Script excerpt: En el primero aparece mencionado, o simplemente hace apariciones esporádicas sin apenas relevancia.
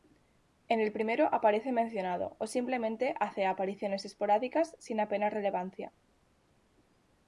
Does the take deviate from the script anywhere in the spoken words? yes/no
no